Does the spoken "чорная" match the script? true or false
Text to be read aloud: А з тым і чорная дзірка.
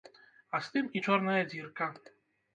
true